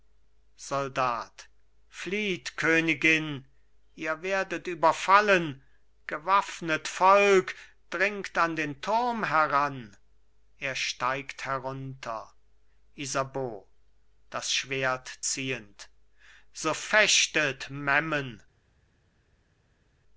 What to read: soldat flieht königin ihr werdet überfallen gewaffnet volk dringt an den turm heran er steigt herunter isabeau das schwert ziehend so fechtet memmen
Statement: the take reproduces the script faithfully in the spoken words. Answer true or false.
true